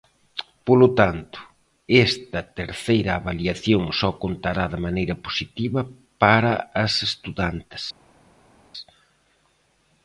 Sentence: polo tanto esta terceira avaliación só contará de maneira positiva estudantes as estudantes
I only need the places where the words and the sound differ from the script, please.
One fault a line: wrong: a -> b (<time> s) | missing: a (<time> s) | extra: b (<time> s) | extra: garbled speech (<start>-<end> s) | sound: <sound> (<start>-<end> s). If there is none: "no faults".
wrong: estudantes -> para (6.2 s)